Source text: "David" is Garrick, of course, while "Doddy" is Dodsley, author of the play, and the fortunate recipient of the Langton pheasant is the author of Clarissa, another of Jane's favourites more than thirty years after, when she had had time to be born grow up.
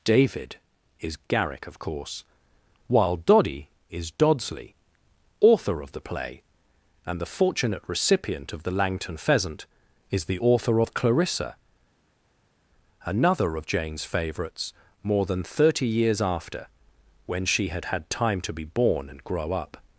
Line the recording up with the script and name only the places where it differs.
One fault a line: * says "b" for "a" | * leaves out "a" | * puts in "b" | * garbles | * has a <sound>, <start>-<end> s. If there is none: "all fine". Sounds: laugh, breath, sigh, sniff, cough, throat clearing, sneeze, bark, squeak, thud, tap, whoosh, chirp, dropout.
* puts in "and"